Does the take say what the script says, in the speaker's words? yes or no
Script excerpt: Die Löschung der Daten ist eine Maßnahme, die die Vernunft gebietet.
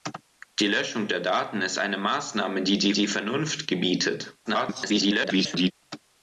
no